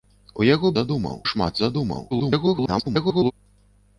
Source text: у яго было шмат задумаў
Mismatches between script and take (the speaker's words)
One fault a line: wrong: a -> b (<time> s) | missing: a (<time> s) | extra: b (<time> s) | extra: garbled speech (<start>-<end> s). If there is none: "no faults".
wrong: было -> задумаў (0.8 s)
extra: garbled speech (2.1-3.3 s)